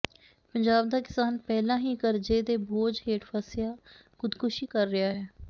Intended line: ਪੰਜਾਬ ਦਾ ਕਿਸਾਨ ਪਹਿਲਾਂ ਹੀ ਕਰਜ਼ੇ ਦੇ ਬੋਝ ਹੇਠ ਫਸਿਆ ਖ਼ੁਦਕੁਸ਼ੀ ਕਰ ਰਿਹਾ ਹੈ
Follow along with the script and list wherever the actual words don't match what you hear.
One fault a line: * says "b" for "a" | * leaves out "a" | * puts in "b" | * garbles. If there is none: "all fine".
all fine